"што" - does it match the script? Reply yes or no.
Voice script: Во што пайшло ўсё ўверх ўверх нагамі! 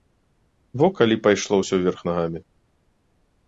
no